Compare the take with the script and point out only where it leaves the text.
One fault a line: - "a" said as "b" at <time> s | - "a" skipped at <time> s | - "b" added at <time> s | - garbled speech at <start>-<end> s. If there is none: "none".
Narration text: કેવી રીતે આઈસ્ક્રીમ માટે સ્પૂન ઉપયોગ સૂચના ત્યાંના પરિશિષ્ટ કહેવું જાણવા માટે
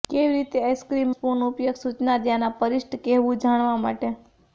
- "માટે" skipped at 1.1 s